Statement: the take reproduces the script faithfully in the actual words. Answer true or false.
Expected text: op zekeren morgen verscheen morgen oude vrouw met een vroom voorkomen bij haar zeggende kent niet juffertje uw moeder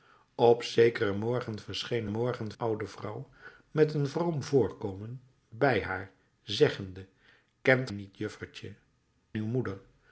true